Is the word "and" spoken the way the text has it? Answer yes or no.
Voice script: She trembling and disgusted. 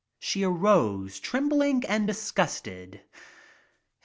yes